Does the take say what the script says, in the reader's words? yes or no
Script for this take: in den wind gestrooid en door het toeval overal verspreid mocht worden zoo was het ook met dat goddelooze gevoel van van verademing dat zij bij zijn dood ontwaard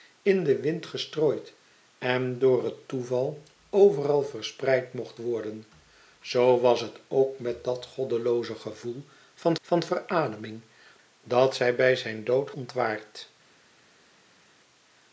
yes